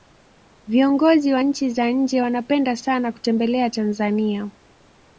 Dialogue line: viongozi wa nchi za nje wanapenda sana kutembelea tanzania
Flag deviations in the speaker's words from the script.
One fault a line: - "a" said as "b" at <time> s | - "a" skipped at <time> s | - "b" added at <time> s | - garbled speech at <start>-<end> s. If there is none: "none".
none